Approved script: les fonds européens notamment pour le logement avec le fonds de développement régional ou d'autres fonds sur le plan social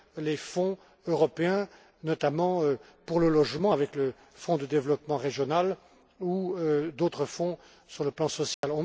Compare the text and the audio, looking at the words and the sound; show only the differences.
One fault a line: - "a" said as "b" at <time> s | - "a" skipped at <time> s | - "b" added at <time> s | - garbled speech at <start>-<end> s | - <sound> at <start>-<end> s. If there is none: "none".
- dropout at 8.5-8.6 s